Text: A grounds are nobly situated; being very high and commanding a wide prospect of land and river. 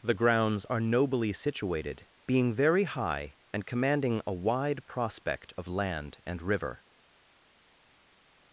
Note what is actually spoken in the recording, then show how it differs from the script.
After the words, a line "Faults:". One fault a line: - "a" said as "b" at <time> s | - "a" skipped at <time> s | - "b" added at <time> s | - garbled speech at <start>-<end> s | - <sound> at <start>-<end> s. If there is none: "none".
The grounds are nobly situated; being very high and commanding a wide prospect of land and river.
Faults:
- "A" said as "The" at 0.0 s